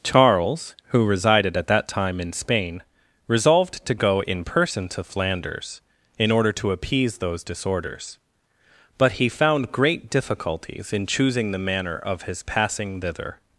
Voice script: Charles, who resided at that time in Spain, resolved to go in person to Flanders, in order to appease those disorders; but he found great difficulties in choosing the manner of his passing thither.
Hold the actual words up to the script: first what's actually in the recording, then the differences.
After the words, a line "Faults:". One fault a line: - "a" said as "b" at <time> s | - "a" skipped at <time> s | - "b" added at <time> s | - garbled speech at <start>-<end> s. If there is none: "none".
Charles, who resided at that time in Spain, resolved to go in person to Flanders, in order to appease those disorders; but he found great difficulties in choosing the manner of his passing thither.
Faults:
none